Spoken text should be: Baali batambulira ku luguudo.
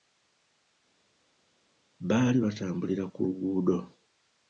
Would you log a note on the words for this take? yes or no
no